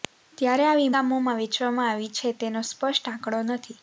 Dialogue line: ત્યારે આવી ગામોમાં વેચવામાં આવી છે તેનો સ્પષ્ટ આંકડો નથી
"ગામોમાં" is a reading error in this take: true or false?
false